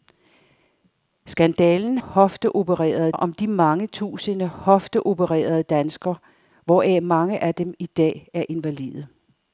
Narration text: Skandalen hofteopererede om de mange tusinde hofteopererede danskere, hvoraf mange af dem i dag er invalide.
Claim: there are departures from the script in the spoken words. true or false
false